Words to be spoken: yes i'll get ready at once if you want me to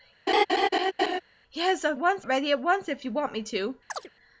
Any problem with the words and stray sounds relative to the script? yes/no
yes